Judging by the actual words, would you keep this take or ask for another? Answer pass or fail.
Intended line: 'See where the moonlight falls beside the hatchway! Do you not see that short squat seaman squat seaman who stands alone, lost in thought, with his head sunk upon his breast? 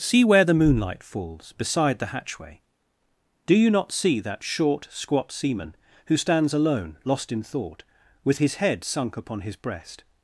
fail